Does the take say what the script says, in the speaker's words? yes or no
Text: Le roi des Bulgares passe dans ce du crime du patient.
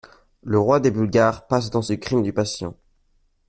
yes